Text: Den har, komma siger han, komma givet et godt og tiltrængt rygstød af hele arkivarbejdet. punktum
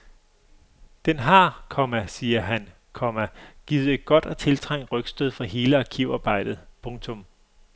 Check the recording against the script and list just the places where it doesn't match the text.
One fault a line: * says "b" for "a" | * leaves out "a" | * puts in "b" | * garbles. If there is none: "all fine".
* says "for" for "af"